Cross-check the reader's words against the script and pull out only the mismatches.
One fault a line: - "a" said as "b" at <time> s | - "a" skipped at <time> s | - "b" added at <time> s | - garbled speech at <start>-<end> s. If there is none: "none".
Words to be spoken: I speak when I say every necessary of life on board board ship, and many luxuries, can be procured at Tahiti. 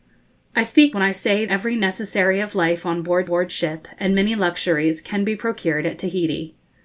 none